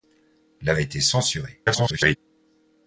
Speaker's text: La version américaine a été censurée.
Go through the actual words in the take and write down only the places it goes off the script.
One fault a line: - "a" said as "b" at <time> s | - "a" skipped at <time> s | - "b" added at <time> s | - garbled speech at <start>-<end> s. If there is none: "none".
- "version américaine" skipped at 0.7 s
- garbled speech at 1.7-2.2 s